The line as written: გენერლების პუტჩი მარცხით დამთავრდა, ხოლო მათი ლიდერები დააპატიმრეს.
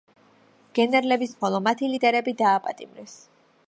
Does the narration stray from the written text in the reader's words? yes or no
yes